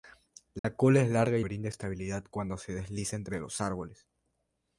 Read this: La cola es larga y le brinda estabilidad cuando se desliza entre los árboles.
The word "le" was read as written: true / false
false